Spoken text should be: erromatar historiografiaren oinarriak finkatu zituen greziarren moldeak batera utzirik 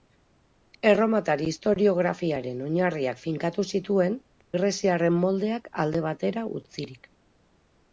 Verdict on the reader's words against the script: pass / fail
fail